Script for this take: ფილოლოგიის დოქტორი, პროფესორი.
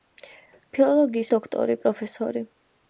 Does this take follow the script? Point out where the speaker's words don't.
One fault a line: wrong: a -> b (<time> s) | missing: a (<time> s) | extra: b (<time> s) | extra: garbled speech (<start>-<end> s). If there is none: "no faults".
no faults